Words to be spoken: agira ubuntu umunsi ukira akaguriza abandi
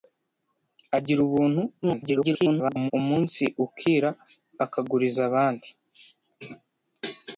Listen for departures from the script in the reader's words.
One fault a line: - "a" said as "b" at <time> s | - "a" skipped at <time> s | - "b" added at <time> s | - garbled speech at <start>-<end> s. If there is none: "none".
- garbled speech at 1.8-2.9 s